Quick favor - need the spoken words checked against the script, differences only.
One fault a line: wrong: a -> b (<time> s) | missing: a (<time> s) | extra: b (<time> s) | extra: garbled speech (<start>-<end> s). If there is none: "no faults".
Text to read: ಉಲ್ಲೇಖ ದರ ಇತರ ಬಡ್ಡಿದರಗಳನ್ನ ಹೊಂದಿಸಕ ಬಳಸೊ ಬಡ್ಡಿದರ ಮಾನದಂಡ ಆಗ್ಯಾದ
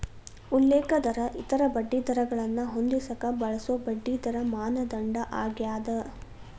no faults